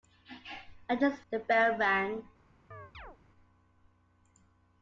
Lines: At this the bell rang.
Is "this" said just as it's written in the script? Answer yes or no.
yes